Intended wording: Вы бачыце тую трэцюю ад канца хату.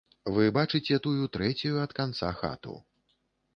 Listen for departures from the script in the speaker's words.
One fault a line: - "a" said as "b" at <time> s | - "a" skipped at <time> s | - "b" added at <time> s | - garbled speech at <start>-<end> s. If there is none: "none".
none